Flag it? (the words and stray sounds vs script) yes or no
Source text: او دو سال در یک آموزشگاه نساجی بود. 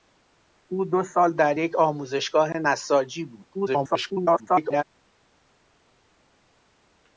yes